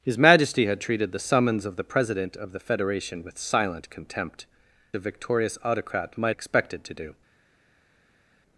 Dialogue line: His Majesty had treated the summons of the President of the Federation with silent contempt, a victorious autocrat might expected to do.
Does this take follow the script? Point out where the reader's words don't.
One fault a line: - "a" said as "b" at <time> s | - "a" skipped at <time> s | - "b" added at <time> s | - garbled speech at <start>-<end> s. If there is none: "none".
none